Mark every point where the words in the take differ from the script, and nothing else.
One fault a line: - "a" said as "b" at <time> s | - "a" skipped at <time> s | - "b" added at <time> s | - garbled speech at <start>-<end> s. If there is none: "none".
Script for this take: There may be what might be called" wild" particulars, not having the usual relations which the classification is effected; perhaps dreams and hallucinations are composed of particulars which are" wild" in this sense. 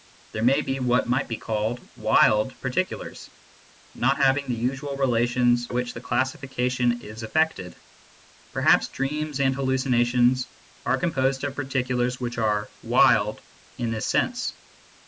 none